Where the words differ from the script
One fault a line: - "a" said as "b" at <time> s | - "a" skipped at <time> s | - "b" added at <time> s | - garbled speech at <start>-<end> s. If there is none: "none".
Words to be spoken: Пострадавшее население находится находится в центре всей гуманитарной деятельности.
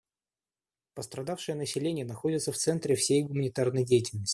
- "находится" skipped at 2.5 s